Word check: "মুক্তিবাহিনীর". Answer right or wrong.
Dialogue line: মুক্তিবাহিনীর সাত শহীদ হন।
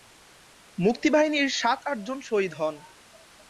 right